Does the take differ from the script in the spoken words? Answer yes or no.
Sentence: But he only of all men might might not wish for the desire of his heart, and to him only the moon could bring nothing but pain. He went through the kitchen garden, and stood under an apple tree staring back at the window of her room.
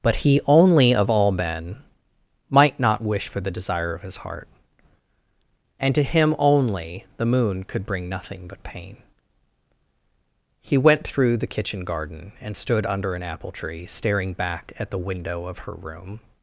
yes